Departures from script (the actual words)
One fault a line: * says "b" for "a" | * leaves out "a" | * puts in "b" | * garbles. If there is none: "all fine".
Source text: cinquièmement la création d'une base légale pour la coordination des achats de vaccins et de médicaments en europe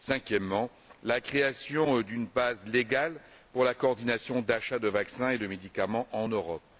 all fine